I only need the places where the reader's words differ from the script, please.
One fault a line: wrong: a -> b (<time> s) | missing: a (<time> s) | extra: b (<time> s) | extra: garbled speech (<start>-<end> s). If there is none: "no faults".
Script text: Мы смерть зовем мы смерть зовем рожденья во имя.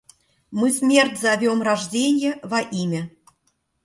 missing: мы смерть зовем (1.6 s)